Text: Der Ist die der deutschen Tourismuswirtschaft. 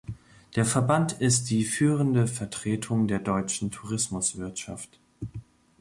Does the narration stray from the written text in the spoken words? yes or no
yes